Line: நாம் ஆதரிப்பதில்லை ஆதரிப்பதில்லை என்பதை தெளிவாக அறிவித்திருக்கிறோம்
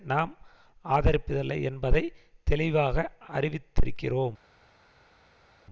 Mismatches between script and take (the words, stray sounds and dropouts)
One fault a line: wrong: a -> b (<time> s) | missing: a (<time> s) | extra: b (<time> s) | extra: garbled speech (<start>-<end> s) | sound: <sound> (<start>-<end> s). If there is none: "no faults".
missing: ஆதரிப்பதில்லை (1.6 s)